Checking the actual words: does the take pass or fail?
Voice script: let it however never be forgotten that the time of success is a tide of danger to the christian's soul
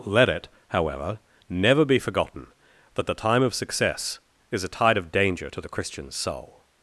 pass